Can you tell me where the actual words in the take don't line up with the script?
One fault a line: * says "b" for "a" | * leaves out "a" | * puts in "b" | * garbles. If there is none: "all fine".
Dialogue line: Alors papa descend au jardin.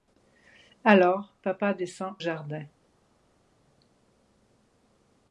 * leaves out "au"